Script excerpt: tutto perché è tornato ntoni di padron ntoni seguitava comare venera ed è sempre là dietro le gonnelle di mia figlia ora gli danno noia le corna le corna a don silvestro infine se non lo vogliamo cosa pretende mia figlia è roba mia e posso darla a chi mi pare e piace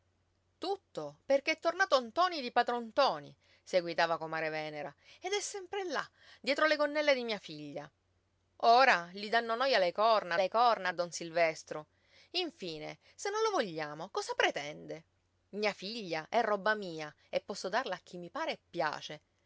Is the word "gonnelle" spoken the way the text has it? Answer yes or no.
yes